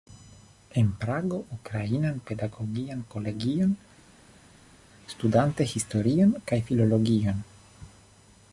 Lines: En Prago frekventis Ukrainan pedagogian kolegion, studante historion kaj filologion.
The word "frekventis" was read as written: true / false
false